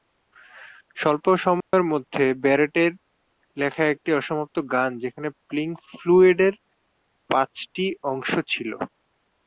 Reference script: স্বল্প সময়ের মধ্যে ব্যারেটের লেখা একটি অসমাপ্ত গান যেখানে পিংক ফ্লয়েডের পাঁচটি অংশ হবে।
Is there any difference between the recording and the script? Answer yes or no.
yes